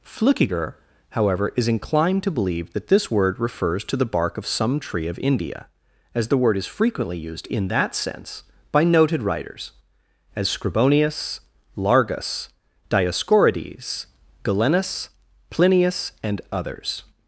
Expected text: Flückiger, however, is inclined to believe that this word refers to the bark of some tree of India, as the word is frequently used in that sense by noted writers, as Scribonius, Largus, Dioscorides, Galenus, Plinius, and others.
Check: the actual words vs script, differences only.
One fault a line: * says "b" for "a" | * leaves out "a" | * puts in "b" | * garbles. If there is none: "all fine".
all fine